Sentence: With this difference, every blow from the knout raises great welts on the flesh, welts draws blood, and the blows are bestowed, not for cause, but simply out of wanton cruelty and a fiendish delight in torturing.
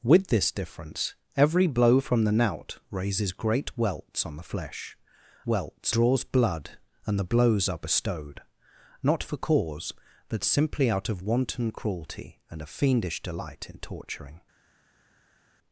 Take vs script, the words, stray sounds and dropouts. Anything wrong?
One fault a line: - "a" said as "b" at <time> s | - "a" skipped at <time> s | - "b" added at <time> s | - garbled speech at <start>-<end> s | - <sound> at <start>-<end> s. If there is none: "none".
none